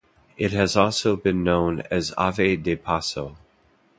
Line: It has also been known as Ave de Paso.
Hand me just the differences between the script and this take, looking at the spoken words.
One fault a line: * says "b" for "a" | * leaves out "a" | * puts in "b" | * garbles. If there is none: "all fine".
all fine